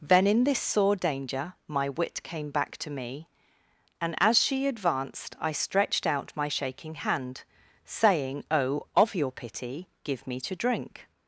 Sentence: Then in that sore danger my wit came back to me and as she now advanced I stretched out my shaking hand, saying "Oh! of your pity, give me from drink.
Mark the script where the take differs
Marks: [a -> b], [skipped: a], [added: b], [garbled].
Then in [that -> this] sore danger my wit came back to me and as she [skipped: now] advanced I stretched out my shaking hand, saying "Oh! of your pity, give me [from -> to] drink.